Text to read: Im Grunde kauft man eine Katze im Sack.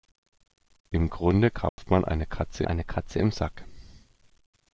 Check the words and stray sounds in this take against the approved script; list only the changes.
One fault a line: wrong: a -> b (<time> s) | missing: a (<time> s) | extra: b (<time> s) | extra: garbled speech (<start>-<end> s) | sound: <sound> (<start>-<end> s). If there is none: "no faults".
sound: dropout (1.7-1.8 s)
extra: eine Katze (2.6 s)